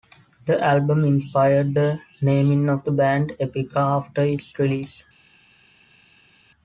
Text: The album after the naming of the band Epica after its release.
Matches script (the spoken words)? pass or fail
fail